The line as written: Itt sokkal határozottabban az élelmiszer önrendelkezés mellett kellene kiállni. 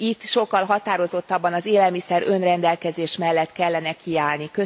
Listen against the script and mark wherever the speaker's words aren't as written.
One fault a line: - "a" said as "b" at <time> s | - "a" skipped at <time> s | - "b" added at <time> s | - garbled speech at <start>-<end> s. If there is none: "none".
none